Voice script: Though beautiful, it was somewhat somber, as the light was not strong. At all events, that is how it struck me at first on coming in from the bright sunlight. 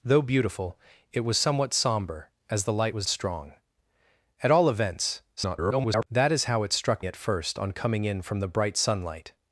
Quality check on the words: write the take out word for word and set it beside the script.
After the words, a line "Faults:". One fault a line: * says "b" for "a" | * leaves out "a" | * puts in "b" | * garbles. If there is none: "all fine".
Though beautiful, it was somewhat somber, as the light was strong. At all events, [garbled] that is how it struck at first on coming in from the bright sunlight.
Faults:
* leaves out "not"
* garbles
* leaves out "me"